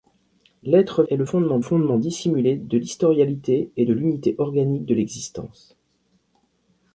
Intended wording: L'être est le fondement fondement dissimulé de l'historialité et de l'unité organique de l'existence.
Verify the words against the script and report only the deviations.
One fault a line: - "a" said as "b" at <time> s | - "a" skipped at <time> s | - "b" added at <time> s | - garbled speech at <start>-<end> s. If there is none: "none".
none